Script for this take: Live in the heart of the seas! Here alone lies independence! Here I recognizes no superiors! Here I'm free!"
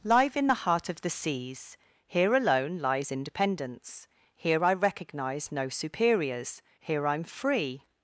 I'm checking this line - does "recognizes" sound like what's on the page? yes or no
no